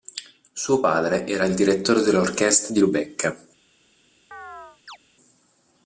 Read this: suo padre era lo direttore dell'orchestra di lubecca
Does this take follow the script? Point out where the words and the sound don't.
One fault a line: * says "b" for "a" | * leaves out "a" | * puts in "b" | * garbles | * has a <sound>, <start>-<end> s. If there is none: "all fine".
* says "il" for "lo"
* has a chirp, 4.3-5.0 s